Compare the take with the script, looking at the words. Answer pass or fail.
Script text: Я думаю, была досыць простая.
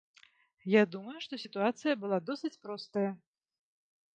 fail